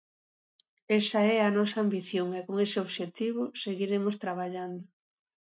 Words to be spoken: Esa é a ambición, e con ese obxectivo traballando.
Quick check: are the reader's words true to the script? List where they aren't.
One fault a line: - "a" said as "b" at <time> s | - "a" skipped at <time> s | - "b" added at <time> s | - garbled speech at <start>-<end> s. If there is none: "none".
- "nosa" added at 1.6 s
- "seguiremos" added at 3.6 s